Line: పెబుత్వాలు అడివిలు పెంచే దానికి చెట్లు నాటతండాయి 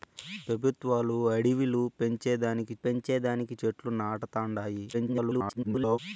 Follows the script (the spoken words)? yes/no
no